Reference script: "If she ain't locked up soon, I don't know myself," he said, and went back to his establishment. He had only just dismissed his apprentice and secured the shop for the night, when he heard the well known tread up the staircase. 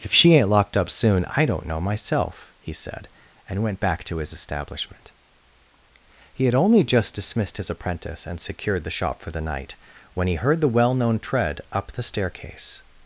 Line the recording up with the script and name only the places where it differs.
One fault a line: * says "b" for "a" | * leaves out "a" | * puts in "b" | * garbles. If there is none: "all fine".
all fine